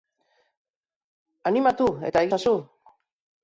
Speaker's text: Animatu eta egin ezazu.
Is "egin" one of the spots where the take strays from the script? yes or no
yes